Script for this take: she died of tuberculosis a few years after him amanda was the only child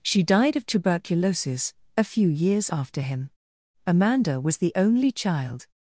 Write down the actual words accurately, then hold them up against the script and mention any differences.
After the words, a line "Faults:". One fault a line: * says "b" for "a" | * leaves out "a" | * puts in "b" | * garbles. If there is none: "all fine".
she died of tuberculosis a few years after him amanda was the only child
Faults:
all fine